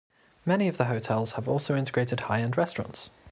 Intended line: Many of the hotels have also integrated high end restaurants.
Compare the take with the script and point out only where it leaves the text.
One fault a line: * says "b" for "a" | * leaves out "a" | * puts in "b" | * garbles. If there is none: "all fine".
all fine